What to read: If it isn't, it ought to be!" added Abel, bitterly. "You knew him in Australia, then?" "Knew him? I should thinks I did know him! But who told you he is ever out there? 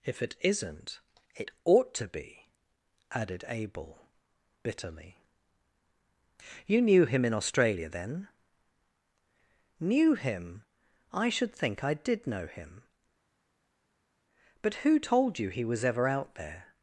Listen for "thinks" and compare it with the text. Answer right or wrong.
wrong